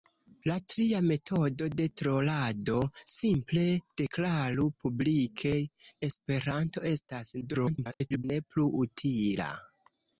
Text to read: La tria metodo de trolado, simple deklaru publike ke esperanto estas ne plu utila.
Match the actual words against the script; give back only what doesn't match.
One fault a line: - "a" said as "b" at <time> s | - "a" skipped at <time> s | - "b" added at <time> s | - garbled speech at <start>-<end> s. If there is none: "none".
- "ke" skipped at 5.5 s
- garbled speech at 7.4-8.2 s